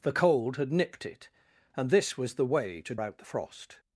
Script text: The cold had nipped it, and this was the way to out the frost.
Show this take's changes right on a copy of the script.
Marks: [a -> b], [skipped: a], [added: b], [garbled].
The cold had nipped it, and this was the way to out the frost.